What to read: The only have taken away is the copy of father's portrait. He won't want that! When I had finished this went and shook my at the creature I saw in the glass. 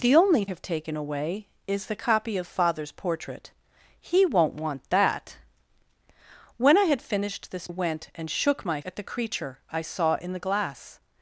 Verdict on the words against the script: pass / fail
pass